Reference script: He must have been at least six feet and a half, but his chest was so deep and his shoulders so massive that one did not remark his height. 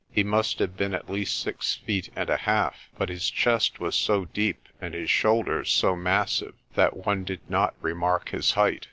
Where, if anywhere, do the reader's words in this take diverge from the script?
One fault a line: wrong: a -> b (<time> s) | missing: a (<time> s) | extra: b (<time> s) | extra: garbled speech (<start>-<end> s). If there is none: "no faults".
no faults